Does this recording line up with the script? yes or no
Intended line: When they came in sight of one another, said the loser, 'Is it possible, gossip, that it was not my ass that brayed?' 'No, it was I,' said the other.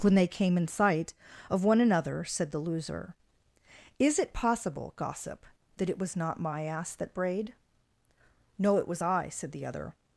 yes